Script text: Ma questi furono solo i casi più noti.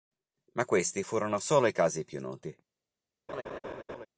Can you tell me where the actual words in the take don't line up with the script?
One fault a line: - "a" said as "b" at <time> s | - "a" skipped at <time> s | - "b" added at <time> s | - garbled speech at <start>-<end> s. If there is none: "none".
none